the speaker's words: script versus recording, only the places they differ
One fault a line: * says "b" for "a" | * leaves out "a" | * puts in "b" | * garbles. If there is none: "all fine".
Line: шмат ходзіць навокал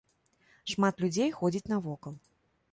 * puts in "людзей"